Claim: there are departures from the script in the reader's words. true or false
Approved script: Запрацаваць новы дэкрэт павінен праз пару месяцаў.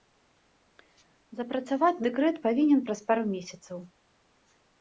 true